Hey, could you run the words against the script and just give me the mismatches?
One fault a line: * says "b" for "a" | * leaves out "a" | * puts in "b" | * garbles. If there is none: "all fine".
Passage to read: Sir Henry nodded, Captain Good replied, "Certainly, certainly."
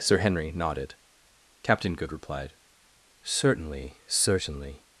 all fine